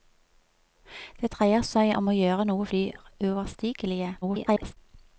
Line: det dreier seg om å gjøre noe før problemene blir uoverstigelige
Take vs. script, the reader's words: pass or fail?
fail